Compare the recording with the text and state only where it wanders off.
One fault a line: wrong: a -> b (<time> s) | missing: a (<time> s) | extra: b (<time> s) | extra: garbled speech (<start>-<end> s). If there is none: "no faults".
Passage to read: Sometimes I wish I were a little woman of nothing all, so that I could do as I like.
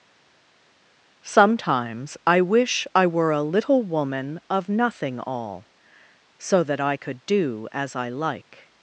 no faults